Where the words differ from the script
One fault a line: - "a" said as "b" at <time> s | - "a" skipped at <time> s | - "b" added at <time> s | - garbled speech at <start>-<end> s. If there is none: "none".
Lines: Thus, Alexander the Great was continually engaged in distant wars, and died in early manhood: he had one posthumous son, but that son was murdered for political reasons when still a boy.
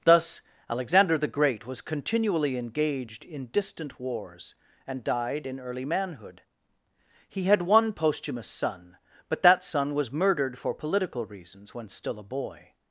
none